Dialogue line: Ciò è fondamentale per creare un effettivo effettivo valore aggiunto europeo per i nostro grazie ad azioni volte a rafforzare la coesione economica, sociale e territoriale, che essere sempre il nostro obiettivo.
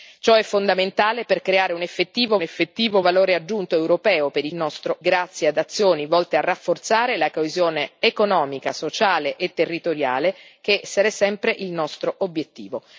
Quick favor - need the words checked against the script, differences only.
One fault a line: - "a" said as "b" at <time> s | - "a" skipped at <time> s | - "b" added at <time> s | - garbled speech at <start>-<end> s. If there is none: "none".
none